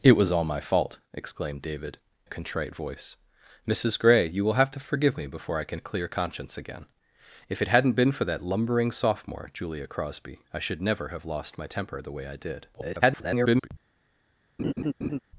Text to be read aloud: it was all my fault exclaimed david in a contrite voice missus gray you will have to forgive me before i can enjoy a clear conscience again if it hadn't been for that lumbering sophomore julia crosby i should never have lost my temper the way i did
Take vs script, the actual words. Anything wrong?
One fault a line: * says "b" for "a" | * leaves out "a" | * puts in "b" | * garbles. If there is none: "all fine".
* leaves out "in"
* leaves out "enjoy"
* garbles